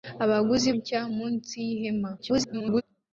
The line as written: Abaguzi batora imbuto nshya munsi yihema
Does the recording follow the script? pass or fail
fail